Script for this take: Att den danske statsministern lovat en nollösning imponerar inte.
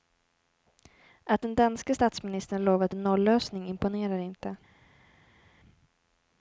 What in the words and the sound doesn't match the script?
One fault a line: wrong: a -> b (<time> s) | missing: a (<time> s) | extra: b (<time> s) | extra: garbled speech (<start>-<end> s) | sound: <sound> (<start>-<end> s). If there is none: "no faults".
no faults